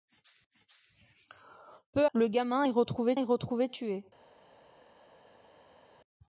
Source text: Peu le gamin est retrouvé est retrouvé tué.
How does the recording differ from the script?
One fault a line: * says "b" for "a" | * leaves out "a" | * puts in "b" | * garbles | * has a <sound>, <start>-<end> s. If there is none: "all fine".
all fine